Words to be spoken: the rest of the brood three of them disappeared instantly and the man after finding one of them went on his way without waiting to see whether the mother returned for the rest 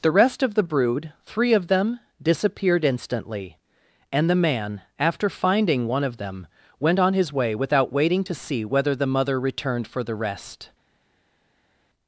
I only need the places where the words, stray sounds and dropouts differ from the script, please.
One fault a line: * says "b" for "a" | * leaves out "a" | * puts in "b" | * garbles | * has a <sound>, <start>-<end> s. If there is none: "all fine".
all fine